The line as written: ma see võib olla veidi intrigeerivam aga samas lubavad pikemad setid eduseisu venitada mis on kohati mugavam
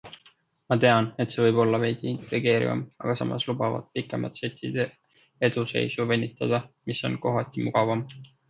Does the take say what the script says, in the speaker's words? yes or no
no